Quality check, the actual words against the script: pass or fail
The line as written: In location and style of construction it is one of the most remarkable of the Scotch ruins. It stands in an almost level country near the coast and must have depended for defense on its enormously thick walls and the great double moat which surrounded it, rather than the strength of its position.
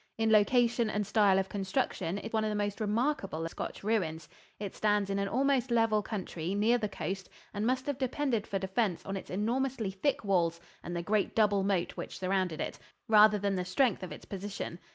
fail